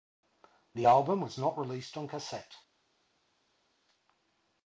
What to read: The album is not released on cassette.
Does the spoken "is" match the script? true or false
false